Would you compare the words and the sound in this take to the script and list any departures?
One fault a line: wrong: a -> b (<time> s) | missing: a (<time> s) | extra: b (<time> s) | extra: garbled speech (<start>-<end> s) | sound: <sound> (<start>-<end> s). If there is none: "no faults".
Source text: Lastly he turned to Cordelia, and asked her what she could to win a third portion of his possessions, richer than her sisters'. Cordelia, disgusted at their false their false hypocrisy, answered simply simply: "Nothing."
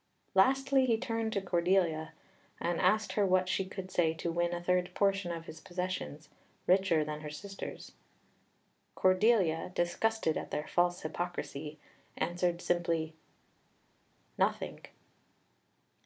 extra: say (3.9 s)
missing: their false (11.0 s)
missing: simply (13.2 s)